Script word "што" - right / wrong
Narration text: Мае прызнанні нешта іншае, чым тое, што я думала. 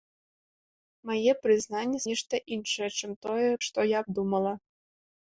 right